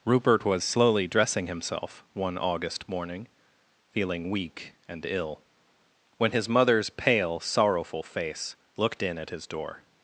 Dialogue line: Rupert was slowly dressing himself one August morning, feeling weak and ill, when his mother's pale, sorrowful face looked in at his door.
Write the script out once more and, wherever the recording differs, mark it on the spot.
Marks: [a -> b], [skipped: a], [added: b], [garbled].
Rupert was slowly dressing himself one August morning, feeling weak and ill, when his mother's pale, sorrowful face looked in at his door.